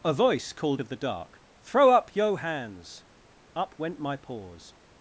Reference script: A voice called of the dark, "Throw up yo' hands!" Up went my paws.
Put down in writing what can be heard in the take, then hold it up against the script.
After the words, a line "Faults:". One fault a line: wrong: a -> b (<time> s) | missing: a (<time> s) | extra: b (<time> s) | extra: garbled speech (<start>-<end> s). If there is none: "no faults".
A voice called of the dark, "Throw up yo' hands!" Up went my paws.
Faults:
no faults